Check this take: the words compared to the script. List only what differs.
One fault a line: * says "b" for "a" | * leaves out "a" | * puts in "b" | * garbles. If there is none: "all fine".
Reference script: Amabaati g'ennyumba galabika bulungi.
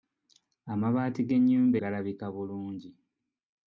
all fine